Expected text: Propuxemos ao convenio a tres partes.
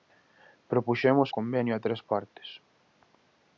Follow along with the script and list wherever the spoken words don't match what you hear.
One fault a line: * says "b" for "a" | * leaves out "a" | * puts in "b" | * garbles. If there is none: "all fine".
* leaves out "ao"